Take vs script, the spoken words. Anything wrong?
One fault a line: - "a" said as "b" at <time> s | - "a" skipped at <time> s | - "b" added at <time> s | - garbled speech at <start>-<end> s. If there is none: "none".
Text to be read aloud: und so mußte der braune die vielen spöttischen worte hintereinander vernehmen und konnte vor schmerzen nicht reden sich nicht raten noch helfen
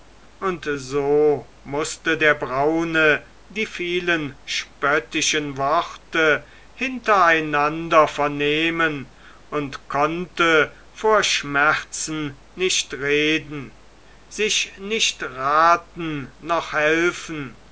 none